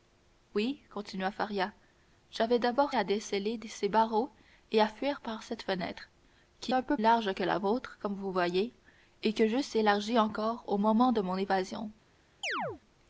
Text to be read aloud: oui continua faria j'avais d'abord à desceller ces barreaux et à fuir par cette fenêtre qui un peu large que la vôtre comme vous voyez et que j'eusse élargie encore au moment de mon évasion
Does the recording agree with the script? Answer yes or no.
yes